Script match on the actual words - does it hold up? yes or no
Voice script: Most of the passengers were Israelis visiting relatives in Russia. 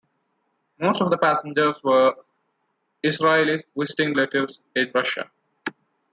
yes